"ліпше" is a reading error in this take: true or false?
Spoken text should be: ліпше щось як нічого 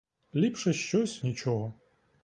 false